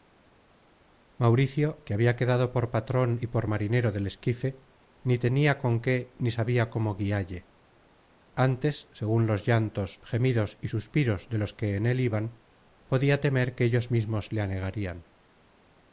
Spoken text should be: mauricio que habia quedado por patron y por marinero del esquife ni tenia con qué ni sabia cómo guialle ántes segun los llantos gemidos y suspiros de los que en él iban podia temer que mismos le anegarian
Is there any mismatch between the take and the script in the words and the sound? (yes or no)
yes